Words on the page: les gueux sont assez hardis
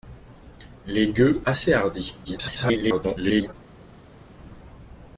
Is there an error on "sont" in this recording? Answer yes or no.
yes